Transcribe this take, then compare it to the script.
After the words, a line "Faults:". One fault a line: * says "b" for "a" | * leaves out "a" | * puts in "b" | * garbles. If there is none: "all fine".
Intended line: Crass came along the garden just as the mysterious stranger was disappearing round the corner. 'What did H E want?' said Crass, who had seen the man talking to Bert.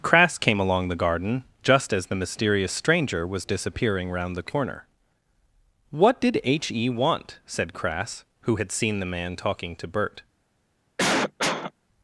Crass came along the garden just as the mysterious stranger was disappearing round the corner. 'What did H E want?' said Crass, who had seen the man talking to Bert.
Faults:
all fine